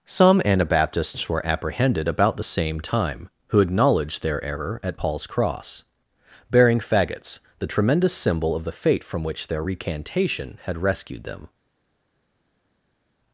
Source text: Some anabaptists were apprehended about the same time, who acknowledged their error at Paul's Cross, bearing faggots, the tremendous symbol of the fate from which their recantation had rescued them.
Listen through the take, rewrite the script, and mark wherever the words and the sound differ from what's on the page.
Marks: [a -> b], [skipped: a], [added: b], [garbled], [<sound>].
Some anabaptists were apprehended about the same time, who acknowledged their error at Paul's Cross, bearing faggots, the tremendous symbol of the fate from which their recantation had rescued them.